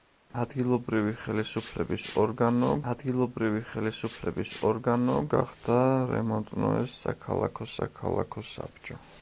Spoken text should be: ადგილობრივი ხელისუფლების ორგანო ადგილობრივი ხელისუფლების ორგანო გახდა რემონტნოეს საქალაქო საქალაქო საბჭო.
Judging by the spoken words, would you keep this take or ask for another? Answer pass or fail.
pass